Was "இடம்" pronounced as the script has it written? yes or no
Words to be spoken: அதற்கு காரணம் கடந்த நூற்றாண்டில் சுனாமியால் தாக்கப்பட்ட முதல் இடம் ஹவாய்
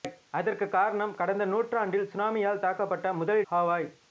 no